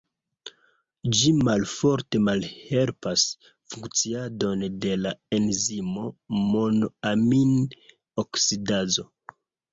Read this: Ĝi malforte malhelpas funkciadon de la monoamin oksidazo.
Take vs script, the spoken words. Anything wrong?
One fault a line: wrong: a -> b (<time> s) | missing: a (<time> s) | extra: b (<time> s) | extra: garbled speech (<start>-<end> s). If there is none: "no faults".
extra: enzimo (5.4 s)